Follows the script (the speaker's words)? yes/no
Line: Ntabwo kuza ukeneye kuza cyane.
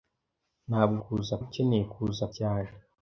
yes